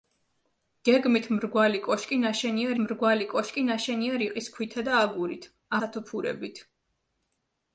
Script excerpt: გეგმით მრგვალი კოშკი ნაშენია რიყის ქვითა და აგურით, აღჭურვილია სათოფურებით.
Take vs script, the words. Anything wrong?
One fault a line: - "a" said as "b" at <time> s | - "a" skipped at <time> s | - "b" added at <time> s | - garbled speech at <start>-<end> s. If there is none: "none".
- "მრგვალი კოშკი ნაშენია" added at 2.8 s
- "აღჭურვილია" skipped at 5.5 s